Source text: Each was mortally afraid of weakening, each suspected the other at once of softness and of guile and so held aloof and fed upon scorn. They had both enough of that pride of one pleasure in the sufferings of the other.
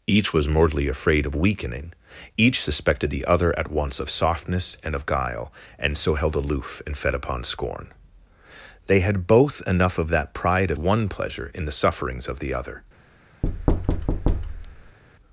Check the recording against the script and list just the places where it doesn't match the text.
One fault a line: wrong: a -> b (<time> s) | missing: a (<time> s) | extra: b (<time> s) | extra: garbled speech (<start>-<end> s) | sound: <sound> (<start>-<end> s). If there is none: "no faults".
sound: thud (13.4-15.0 s)